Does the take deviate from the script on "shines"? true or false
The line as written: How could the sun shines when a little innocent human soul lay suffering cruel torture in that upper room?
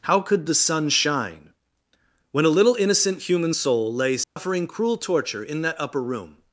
true